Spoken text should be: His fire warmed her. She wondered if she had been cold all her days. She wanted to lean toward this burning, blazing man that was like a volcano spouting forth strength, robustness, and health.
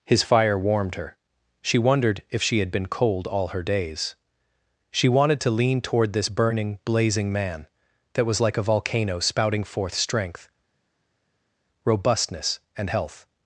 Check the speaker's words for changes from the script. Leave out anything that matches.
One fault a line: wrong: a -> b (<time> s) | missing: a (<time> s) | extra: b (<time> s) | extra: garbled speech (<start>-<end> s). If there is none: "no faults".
no faults